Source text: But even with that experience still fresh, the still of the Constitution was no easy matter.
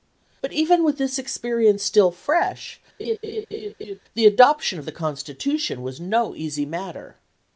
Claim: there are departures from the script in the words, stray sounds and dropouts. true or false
true